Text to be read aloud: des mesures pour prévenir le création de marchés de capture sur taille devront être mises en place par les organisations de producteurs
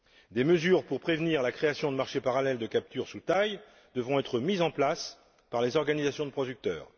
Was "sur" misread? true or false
true